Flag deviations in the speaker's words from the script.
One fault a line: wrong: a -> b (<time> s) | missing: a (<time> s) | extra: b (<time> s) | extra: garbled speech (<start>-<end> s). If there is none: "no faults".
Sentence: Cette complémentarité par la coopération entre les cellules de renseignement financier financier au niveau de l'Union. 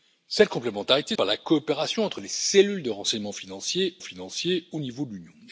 no faults